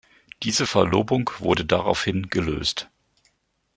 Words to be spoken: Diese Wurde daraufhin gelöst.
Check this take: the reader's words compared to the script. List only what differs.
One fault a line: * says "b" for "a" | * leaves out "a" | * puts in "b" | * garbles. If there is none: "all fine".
* puts in "Verlobung"